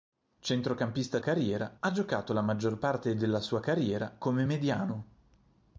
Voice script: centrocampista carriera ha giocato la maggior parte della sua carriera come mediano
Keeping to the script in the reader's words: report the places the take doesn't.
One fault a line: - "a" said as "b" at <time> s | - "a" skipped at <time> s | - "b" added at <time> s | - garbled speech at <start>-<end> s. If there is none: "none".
none